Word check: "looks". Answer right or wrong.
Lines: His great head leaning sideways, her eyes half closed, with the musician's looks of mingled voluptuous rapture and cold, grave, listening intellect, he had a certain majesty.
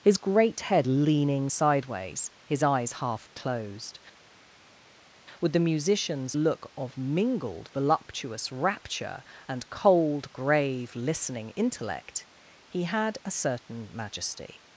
wrong